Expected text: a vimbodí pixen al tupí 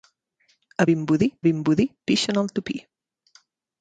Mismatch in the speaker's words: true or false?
true